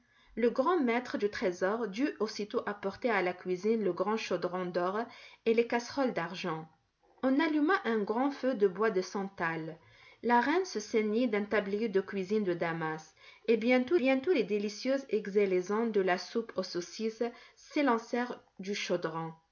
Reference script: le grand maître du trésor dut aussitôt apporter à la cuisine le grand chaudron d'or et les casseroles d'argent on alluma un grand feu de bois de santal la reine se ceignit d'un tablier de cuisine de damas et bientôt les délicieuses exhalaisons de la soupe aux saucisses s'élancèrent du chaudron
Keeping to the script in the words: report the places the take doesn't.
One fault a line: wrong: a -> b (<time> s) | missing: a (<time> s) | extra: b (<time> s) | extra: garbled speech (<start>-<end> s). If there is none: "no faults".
extra: bientôt (13.9 s)